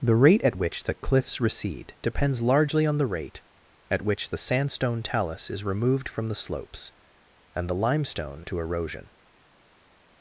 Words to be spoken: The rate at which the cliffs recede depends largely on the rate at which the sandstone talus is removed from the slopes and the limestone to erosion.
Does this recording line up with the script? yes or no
yes